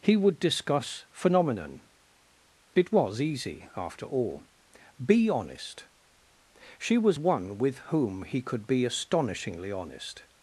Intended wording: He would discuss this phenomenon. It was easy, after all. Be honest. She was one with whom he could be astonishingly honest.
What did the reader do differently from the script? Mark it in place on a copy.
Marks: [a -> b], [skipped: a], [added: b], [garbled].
He would discuss [skipped: this] phenomenon. It was easy, after all. Be honest. She was one with whom he could be astonishingly honest.